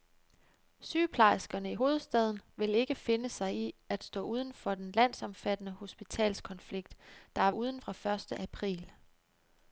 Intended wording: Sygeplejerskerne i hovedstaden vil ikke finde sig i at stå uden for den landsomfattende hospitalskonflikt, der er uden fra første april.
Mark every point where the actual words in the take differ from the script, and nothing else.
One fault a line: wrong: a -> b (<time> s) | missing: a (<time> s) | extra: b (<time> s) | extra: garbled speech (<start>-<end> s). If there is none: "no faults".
no faults